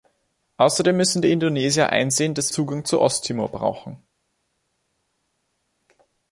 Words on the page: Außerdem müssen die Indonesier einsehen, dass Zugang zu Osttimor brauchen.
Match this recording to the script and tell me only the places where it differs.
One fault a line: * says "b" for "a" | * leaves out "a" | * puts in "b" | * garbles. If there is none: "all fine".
all fine